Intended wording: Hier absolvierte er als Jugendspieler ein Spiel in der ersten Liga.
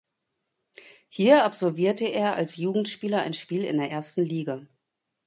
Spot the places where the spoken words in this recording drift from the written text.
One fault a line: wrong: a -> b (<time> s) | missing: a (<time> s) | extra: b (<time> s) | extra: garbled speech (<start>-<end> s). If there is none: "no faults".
no faults